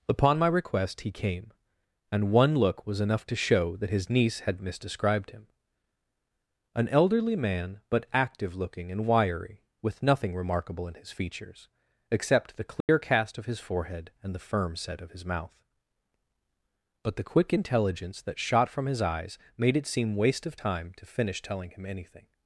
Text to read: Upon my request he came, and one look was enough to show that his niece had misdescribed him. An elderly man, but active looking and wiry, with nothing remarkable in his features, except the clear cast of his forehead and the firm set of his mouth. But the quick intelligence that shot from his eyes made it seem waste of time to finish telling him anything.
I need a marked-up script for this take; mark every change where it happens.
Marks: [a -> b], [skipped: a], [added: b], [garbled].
Upon my request he came, and one look was enough to show that his niece had misdescribed him. An elderly man, but active looking and wiry, with nothing remarkable in his features, except the clear cast of his forehead and the firm set of his mouth. But the quick intelligence that shot from his eyes made it seem waste of time to finish telling him anything.